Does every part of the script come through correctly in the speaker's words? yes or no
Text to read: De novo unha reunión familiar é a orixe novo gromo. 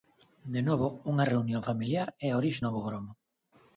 yes